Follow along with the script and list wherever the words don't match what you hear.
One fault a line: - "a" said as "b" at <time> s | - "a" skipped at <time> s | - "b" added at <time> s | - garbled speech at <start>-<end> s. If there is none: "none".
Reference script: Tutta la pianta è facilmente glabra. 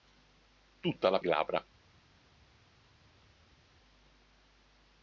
- "pianta è facilmente" skipped at 1.2 s